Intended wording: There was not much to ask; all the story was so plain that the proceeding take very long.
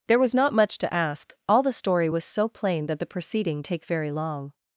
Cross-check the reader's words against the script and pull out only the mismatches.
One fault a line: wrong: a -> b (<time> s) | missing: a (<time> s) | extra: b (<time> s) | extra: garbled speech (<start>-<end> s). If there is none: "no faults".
no faults